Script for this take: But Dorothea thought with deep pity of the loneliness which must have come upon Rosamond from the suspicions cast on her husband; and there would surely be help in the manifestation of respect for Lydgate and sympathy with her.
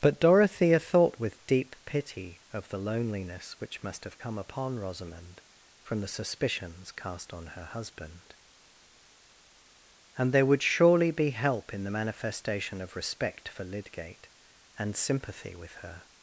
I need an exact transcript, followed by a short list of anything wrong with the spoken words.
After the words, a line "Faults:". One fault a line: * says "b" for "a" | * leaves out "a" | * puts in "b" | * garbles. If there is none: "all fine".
But Dorothea thought with deep pity of the loneliness which must have come upon Rosamond from the suspicions cast on her husband; and there would surely be help in the manifestation of respect for Lydgate and sympathy with her.
Faults:
all fine